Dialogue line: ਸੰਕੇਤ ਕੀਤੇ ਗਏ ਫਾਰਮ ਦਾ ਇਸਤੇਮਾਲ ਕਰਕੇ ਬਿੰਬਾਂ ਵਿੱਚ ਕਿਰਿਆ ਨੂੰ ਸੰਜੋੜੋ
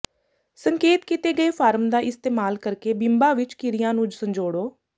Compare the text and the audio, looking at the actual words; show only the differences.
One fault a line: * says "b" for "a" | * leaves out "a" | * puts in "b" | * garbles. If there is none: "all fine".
all fine